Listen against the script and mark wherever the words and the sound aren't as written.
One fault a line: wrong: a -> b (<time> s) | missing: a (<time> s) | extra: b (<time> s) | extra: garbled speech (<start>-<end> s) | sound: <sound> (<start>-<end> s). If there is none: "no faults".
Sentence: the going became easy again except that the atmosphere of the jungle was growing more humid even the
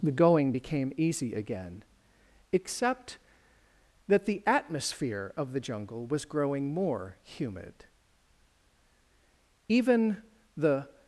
no faults